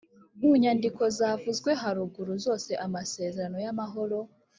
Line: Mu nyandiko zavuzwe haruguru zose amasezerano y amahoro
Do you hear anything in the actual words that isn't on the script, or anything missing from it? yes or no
no